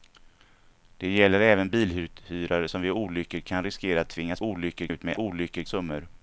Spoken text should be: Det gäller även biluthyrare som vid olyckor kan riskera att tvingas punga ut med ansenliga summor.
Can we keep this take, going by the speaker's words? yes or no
no